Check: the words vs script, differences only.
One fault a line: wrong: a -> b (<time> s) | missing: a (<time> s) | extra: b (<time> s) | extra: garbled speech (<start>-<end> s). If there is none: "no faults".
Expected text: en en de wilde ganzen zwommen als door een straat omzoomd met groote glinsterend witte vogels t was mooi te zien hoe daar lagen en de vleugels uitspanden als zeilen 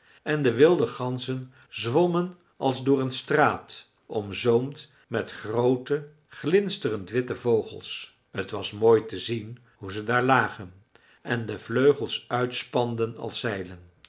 missing: en (0.4 s)
extra: ze (9.9 s)